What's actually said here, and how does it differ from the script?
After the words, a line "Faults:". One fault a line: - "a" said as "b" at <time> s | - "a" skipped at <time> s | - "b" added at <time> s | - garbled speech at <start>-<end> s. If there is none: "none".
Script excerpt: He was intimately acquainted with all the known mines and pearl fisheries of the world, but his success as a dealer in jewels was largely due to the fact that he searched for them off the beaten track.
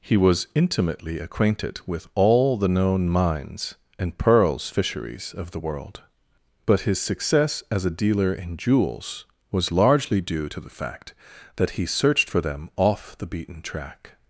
He was intimately acquainted with all the known mines and pearls fisheries of the world, but his success as a dealer in jewels was largely due to the fact that he searched for them off the beaten track.
Faults:
- "pearl" said as "pearls" at 4.2 s